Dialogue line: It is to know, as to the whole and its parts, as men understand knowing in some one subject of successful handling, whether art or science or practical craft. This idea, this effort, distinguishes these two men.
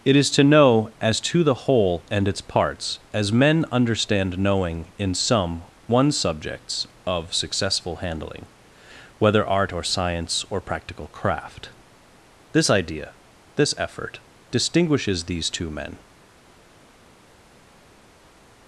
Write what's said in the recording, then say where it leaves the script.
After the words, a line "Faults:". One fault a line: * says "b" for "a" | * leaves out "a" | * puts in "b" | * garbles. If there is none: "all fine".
It is to know, as to the whole and its parts, as men understand knowing in some one subjects of successful handling, whether art or science or practical craft. This idea, this effort, distinguishes these two men.
Faults:
* says "subjects" for "subject"